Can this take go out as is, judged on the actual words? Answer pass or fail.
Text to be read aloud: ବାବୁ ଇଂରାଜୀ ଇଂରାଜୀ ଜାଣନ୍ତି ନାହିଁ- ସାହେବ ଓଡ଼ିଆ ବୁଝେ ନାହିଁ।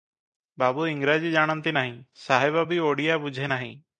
fail